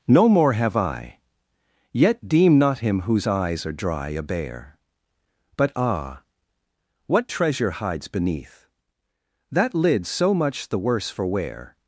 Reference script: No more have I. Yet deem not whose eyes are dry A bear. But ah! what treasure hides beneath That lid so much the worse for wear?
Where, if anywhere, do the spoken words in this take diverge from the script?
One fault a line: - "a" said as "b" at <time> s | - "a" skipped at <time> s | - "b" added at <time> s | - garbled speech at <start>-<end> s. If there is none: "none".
- "him" added at 2.8 s